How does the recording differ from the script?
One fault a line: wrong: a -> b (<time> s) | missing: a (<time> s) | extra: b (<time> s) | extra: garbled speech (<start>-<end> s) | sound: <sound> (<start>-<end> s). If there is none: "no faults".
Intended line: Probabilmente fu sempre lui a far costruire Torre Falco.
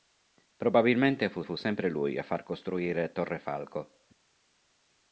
extra: fu (1.4 s)